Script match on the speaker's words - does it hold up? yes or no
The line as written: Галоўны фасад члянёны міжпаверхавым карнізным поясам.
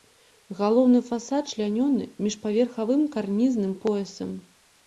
yes